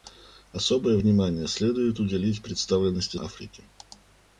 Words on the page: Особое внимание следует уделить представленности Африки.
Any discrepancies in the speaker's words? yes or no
no